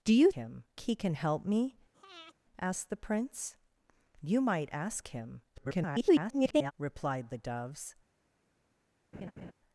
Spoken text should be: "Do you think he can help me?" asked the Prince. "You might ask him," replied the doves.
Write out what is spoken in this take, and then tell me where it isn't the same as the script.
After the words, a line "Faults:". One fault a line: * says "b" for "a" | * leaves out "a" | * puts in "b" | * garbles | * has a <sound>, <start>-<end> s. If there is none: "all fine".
"Do you him he can help me?" asked the Prince. "You might ask him," [garbled] replied the doves.
Faults:
* says "him" for "think"
* has a breath, 1.9-2.3 s
* garbles
* has a laugh, 9.1-9.5 s